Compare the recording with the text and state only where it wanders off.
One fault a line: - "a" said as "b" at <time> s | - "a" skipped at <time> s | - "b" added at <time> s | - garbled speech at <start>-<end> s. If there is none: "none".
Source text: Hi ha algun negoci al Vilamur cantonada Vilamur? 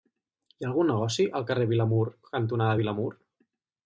- "carrer" added at 1.5 s